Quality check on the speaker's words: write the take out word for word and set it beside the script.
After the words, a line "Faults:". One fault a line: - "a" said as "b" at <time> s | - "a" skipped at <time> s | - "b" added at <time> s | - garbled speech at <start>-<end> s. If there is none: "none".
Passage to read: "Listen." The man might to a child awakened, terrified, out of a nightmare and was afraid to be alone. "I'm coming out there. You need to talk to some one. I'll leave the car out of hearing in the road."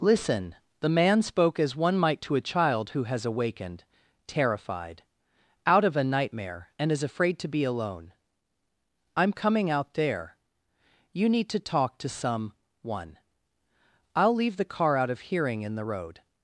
"Listen." The man spoke as one might to a child who has awakened, terrified, out of a nightmare and is afraid to be alone. "I'm coming out there. You need to talk to some one. I'll leave the car out of hearing in the road."
Faults:
- "spoke as one" added at 1.2 s
- "who has" added at 2.9 s
- "was" said as "is" at 6.9 s